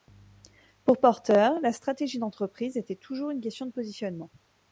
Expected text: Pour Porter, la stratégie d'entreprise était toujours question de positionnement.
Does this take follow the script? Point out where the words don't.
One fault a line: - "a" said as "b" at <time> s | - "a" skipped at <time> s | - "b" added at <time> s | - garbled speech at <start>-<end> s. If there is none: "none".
- "une" added at 3.3 s